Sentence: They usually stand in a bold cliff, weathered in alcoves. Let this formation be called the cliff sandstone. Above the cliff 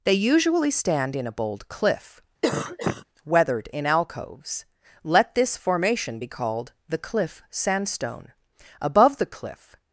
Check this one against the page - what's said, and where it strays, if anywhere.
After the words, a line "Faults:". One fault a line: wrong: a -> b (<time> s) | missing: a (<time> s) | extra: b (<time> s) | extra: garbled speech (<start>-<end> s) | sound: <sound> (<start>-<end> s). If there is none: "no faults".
They usually stand in a bold cliff, weathered in alcoves. Let this formation be called the cliff sandstone. Above the cliff
Faults:
sound: cough (2.4-3.0 s)